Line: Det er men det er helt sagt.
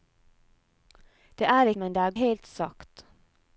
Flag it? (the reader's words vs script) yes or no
no